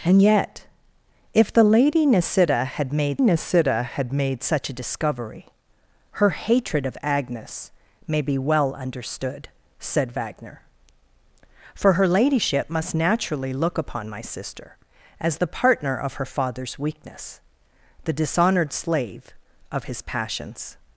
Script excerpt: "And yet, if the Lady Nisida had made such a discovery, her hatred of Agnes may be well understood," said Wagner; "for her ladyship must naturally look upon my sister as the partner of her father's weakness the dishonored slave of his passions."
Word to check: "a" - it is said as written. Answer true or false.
true